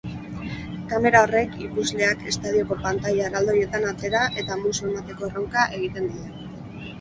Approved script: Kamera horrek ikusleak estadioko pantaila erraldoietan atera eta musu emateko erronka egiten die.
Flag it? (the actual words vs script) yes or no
no